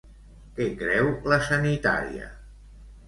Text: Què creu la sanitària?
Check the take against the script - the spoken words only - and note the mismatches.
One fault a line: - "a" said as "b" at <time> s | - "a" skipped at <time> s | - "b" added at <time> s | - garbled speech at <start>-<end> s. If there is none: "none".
none